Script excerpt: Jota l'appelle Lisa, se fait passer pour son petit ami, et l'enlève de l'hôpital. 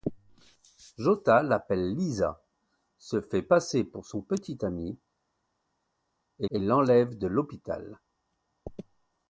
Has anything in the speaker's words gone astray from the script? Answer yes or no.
yes